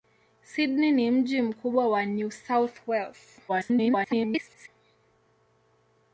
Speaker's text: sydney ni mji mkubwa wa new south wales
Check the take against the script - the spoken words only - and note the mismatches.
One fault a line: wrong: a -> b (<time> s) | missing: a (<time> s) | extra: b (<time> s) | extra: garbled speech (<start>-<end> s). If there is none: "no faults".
extra: garbled speech (3.5-4.7 s)